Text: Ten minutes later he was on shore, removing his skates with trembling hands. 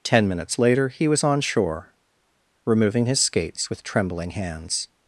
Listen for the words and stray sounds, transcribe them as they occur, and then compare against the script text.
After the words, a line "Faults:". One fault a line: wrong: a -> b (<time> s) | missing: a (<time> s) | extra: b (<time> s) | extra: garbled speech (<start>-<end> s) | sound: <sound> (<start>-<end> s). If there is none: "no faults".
Ten minutes later he was on shore, removing his skates with trembling hands.
Faults:
no faults